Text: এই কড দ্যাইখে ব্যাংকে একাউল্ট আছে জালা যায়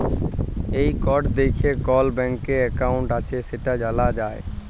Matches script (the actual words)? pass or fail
fail